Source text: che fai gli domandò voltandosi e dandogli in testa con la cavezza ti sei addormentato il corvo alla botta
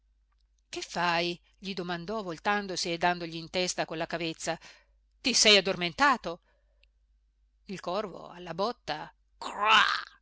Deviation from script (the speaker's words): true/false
false